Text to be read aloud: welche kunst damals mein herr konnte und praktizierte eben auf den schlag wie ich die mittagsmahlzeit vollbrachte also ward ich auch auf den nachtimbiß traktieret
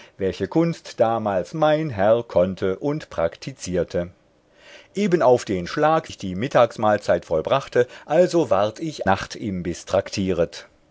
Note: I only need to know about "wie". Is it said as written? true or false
false